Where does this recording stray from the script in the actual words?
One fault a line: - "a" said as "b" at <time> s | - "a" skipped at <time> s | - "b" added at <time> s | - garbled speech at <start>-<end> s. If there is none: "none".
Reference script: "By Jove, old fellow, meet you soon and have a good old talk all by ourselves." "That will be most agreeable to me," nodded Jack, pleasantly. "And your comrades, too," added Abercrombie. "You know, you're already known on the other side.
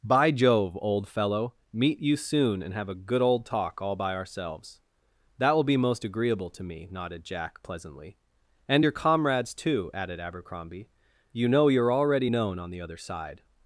none